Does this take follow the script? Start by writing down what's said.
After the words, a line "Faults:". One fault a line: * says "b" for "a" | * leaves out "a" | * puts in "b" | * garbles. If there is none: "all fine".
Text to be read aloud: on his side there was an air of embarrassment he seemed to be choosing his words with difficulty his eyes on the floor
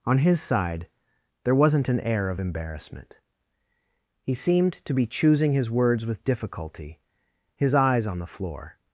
on his side there wasn't an air of embarrassment he seemed to be choosing his words with difficulty his eyes on the floor
Faults:
* says "wasn't" for "was"